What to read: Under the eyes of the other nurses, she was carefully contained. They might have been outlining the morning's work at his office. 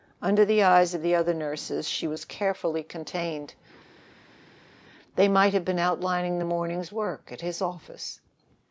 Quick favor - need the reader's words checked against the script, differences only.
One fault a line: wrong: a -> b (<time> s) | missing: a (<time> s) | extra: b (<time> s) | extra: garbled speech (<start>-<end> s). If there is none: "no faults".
no faults